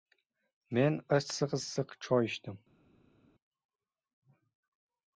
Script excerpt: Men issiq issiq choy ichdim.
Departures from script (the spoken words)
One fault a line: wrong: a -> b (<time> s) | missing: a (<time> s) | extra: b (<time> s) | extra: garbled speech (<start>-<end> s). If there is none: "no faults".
no faults